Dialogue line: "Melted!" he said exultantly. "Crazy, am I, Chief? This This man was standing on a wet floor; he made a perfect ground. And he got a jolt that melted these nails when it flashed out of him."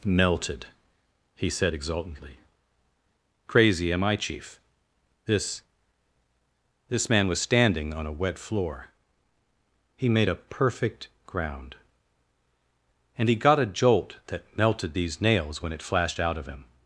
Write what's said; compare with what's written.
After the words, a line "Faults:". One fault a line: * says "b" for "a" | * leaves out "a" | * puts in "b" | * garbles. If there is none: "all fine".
"Melted!" he said exultantly. "Crazy, am I, Chief? This This man was standing on a wet floor; he made a perfect ground. And he got a jolt that melted these nails when it flashed out of him."
Faults:
all fine